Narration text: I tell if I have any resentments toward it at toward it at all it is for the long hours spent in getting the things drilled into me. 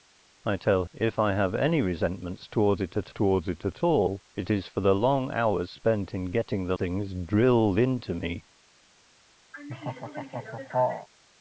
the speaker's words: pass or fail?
pass